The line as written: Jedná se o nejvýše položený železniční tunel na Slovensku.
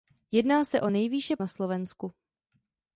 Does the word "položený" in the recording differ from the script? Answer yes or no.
yes